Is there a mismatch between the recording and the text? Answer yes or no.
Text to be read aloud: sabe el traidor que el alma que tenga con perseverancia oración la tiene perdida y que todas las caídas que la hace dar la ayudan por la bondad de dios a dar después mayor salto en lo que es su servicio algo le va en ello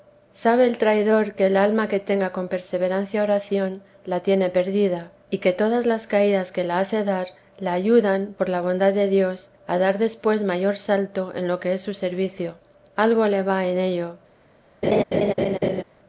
no